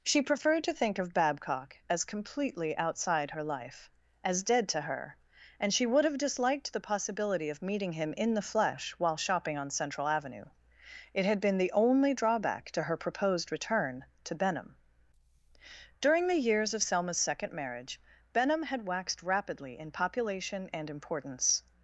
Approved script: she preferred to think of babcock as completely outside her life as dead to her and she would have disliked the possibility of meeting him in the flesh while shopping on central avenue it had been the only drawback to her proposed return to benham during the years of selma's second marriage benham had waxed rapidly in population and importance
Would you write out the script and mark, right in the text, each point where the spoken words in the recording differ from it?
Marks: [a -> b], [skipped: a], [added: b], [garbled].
she preferred to think of babcock as completely outside her life as dead to her and she would have disliked the possibility of meeting him in the flesh while shopping on central avenue it had been the only drawback to her proposed return to benham during the years of selma's second marriage benham had waxed rapidly in population and importance